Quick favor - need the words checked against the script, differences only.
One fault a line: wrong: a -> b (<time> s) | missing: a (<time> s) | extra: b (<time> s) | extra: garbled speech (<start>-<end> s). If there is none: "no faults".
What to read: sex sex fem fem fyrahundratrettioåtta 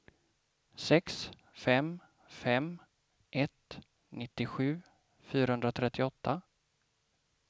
wrong: sex -> fem (1.5 s)
wrong: fem -> ett nittiosju (3.3 s)